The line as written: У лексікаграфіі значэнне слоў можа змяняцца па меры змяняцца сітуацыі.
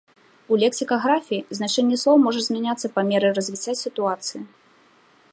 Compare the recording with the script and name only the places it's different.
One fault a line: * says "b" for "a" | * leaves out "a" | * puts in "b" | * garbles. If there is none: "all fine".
* says "развіцця" for "змяняцца"